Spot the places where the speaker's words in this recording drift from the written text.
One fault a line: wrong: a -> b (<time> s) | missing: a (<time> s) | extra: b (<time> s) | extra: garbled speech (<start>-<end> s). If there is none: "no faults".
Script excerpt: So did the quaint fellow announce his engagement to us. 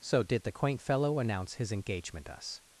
missing: to (2.3 s)